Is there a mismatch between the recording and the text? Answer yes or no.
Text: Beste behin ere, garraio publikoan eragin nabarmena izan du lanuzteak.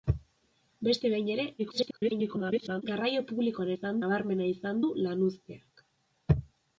yes